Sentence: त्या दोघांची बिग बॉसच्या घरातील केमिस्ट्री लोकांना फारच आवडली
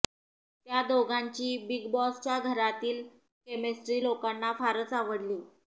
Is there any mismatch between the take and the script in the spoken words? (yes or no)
no